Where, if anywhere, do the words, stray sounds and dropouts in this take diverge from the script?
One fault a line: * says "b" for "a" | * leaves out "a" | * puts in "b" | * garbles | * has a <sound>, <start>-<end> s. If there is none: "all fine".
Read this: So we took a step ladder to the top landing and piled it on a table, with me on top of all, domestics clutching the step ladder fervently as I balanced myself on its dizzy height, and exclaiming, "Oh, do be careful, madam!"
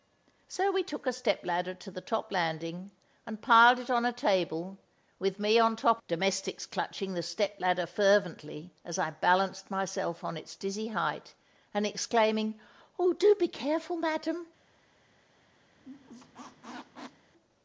* leaves out "of all"
* has a squeak, 15.8-17.3 s